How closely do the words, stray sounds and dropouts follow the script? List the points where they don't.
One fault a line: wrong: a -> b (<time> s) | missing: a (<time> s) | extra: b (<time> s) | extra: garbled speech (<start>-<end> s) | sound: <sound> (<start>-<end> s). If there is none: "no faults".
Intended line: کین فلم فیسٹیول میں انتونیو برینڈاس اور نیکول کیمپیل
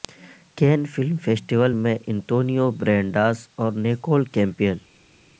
no faults